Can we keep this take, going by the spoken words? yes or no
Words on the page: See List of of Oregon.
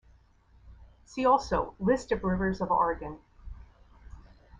no